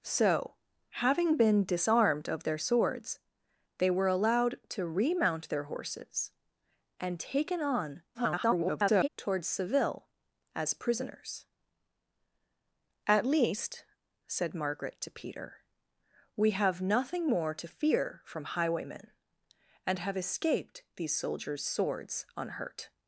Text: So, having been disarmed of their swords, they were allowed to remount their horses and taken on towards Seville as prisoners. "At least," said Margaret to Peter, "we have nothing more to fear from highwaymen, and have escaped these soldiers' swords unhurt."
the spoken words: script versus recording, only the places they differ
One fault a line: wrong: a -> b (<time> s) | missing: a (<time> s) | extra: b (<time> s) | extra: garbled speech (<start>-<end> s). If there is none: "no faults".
extra: garbled speech (8.1-9.1 s)